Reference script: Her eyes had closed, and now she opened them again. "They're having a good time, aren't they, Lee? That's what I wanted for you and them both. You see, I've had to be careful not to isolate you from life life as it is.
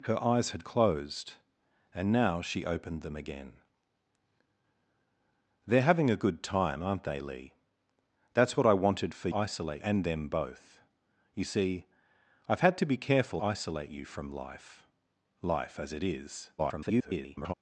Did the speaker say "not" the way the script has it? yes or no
no